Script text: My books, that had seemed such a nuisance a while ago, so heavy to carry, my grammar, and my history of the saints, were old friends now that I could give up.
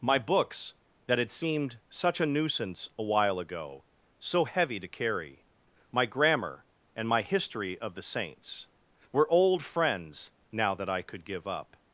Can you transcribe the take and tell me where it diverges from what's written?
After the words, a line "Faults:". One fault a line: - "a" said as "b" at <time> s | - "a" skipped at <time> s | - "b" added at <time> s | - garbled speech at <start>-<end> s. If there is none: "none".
My books, that had seemed such a nuisance a while ago, so heavy to carry, my grammar, and my history of the saints, were old friends now that I could give up.
Faults:
none